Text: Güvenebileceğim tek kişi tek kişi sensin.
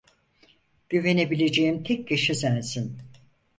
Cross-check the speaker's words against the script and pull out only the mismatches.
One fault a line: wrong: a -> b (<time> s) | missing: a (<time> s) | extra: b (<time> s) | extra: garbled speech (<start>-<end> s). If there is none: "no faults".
missing: tek kişi (2.4 s)